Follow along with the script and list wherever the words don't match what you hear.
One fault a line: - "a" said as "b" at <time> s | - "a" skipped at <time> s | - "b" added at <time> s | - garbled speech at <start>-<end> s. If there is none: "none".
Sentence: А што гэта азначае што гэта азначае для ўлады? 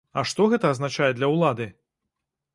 - "што гэта азначае" skipped at 1.1 s